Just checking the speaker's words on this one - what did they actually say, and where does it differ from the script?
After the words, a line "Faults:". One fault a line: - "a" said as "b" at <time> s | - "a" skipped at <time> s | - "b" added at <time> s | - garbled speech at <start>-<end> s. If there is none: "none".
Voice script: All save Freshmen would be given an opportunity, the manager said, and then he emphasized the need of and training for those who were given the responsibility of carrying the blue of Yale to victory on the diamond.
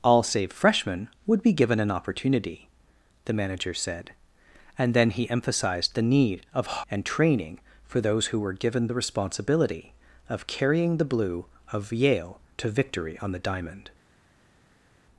All save Freshmen would be given an opportunity, the manager said, and then he emphasized the need of and training for those who were given the responsibility of carrying the blue of Yale to victory on the diamond.
Faults:
none